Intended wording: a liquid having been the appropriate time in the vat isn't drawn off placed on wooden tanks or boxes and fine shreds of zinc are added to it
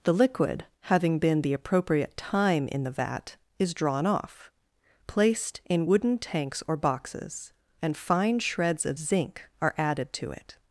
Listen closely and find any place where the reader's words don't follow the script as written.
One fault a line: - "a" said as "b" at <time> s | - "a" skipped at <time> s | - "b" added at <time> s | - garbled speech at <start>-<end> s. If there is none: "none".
- "a" said as "the" at 0.0 s
- "isn't" said as "is" at 3.6 s
- "on" said as "in" at 5.7 s